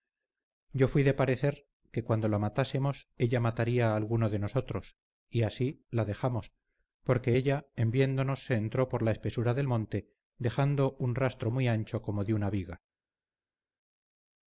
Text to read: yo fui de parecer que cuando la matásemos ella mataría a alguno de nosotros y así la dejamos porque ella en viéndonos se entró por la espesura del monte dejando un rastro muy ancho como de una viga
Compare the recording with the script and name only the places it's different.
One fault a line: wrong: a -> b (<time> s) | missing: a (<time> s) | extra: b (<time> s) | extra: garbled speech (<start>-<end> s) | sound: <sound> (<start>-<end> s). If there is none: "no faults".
no faults